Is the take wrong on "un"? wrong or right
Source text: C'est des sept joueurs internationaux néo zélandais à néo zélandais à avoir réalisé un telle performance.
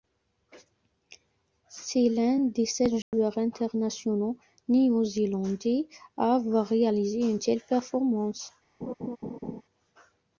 wrong